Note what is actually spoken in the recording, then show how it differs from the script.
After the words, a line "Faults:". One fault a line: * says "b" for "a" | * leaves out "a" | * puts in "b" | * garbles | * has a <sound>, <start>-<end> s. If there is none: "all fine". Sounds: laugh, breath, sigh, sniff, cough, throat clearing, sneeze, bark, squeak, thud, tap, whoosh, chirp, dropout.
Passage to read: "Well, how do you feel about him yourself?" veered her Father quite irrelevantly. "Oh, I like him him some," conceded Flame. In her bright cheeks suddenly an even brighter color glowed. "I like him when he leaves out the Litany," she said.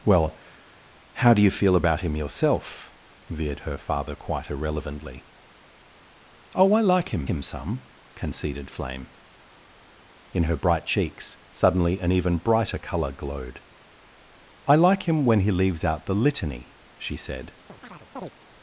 "Well, how do you feel about him yourself?" veered her Father quite irrelevantly. "Oh, I like him him some," conceded Flame. In her bright cheeks suddenly an even brighter color glowed. "I like him when he leaves out the Litany," she said.
Faults:
* has a chirp, 17.7-18.3 s